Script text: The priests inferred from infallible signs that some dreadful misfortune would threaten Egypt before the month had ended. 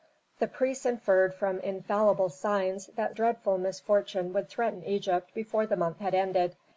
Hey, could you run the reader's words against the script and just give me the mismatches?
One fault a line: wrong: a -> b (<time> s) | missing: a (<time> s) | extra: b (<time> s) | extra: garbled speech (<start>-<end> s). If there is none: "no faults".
missing: some (3.2 s)